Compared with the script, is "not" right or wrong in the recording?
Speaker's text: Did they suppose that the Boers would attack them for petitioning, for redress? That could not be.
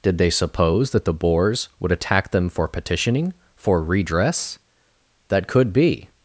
wrong